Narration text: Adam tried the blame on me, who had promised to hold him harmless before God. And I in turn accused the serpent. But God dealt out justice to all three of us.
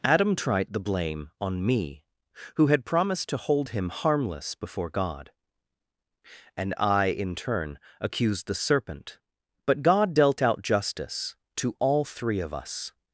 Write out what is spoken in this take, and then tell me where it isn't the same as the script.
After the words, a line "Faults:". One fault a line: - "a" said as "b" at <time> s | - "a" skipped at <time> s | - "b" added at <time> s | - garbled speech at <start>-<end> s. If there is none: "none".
Adam tried the blame on me, who had promised to hold him harmless before God. And I in turn accused the serpent. But God dealt out justice to all three of us.
Faults:
none